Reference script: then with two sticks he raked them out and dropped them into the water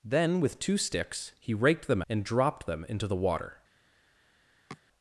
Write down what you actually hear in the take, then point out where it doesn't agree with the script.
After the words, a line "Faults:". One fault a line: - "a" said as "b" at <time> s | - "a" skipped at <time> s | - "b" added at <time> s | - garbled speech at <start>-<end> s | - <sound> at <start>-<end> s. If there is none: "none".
then with two sticks he raked them and dropped them into the water
Faults:
- "out" skipped at 2.0 s
- sniff at 4.7-4.8 s